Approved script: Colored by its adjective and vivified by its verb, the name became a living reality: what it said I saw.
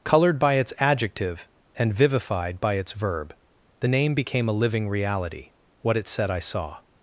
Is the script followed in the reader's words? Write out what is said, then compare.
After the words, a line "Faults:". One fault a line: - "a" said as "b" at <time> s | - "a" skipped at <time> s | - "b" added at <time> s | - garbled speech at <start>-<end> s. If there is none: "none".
Colored by its adjective and vivified by its verb, the name became a living reality: what it said I saw.
Faults:
none